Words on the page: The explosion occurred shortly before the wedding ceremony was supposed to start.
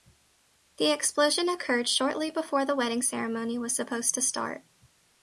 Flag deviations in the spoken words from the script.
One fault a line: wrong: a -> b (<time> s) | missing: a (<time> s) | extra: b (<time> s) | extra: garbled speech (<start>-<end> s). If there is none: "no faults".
no faults